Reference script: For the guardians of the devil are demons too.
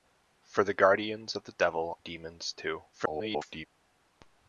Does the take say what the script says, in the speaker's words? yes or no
no